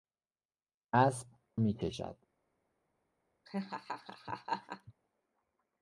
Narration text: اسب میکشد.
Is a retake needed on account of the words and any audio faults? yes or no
yes